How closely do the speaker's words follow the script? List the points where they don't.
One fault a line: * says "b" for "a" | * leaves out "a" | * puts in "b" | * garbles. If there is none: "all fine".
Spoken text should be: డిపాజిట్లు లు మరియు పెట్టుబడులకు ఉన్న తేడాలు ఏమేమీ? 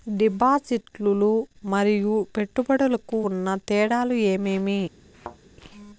all fine